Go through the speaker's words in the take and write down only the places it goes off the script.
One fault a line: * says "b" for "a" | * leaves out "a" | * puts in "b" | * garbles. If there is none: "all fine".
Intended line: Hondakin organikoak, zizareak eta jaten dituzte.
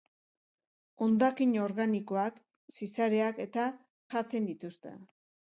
all fine